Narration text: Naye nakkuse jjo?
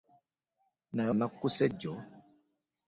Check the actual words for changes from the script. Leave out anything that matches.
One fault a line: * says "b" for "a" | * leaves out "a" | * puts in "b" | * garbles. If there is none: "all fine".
all fine